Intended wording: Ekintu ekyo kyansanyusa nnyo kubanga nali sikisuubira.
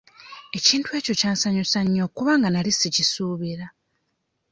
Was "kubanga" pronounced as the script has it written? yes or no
yes